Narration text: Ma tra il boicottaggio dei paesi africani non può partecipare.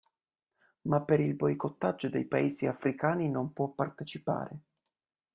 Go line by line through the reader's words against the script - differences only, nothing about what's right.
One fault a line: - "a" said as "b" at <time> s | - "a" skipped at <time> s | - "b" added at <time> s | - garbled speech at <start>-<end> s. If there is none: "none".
- "tra" said as "per" at 1.0 s